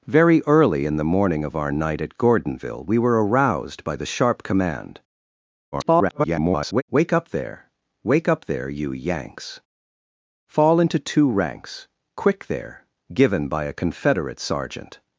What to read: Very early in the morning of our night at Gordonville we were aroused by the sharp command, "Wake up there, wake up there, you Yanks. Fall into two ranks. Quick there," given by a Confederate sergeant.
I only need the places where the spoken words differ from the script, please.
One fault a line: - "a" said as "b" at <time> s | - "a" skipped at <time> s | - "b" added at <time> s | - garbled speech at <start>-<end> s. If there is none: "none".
- garbled speech at 5.7-6.8 s